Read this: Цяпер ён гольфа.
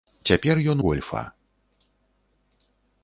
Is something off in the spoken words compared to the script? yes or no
no